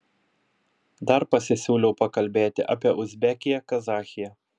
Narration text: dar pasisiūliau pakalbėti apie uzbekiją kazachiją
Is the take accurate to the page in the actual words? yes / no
yes